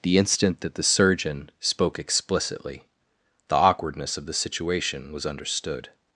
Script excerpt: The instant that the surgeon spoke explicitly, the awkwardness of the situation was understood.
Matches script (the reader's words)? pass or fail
pass